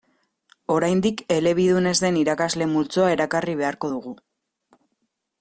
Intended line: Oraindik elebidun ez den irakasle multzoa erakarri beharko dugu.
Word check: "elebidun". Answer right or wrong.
right